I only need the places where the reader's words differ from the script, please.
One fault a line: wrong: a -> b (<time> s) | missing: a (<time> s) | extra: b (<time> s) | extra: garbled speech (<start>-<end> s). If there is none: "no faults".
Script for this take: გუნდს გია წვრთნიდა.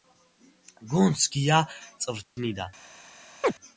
no faults